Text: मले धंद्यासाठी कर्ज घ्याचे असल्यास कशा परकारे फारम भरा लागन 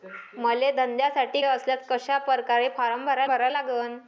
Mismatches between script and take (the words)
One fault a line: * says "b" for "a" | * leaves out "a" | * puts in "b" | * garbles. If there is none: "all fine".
* leaves out "कर्ज घ्याचे"
* puts in "भरा"